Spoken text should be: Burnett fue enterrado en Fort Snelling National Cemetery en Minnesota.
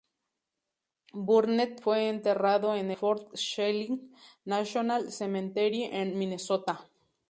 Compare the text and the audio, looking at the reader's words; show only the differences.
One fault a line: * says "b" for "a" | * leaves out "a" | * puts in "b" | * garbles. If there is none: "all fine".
all fine